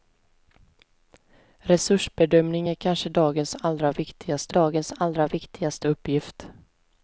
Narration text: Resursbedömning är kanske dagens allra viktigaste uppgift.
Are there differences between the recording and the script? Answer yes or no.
yes